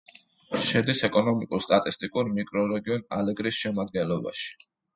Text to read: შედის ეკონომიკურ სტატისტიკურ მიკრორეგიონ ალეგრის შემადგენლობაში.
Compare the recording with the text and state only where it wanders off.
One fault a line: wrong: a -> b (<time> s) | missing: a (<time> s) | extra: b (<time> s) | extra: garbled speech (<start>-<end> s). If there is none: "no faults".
no faults